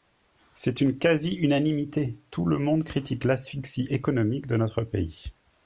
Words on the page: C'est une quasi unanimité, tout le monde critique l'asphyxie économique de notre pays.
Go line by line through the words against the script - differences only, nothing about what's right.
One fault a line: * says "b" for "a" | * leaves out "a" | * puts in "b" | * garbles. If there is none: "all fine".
all fine